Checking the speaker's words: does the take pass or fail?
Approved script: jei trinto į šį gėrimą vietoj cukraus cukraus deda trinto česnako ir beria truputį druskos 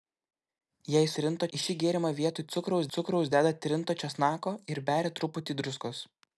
pass